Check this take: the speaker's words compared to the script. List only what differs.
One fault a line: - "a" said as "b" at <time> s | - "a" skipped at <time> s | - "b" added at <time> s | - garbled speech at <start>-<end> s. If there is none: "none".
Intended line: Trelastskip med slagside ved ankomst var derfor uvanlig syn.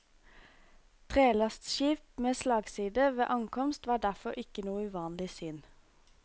- "ikke noe" added at 4.4 s